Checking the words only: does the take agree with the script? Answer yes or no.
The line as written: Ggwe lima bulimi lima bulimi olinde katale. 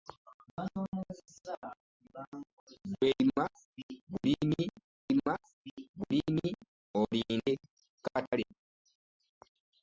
yes